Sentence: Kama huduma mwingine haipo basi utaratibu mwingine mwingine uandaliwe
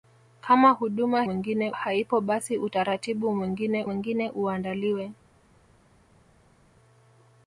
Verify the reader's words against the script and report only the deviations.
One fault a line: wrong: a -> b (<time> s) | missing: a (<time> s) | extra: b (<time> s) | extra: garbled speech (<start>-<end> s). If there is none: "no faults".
no faults